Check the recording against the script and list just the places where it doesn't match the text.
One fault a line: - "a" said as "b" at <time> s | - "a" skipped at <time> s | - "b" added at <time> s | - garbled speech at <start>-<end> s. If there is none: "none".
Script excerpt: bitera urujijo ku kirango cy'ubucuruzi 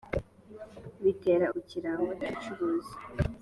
- "urujijo" skipped at 1.4 s